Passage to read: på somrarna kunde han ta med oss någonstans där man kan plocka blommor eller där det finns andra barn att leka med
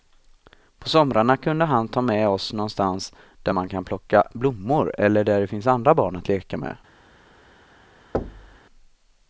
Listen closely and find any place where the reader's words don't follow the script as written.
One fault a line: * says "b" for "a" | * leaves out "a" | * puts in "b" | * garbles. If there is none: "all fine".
all fine